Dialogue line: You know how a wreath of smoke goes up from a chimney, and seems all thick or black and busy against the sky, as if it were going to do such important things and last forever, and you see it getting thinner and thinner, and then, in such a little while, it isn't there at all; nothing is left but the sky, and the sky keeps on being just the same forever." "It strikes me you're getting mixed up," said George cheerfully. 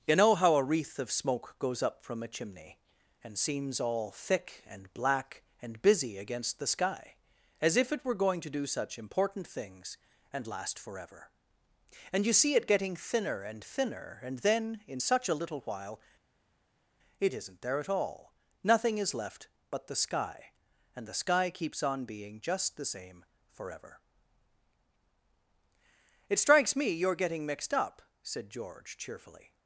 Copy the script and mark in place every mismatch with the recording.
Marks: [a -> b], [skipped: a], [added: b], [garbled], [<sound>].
You know how a wreath of smoke goes up from a chimney, and seems all thick [or -> and] black and busy against the sky, as if it were going to do such important things and last forever, and you see it getting thinner and thinner, and then, in such a little while, it isn't there at all; nothing is left but the sky, and the sky keeps on being just the same forever." "It strikes me you're getting mixed up," said George cheerfully.